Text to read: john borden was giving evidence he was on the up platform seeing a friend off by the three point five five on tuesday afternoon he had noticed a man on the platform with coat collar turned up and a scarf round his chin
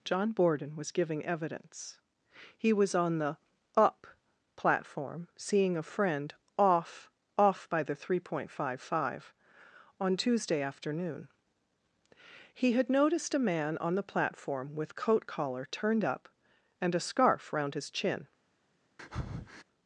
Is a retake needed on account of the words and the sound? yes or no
yes